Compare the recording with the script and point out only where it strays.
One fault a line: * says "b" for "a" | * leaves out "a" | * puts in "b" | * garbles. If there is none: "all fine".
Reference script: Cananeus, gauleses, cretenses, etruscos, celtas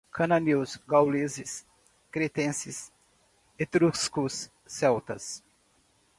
all fine